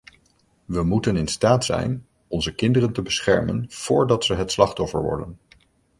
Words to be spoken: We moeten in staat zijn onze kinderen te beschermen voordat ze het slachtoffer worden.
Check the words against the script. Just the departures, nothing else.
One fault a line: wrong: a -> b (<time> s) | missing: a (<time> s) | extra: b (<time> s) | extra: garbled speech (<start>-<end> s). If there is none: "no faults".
no faults